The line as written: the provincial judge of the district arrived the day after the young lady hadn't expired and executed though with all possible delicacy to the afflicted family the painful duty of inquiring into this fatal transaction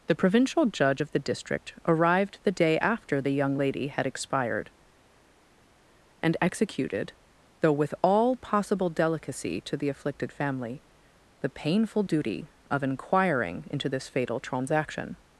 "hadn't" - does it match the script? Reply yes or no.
no